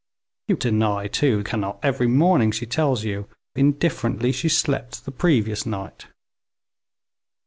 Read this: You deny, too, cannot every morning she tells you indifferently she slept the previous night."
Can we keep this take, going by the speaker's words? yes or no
yes